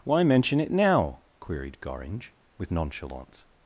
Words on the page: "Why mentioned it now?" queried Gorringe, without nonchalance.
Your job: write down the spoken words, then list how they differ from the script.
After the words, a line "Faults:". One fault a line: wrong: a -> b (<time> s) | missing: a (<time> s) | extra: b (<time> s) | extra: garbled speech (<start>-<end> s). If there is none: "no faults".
"Why mention it now?" queried Gorringe, with nonchalance.
Faults:
wrong: mentioned -> mention (0.2 s)
wrong: without -> with (2.6 s)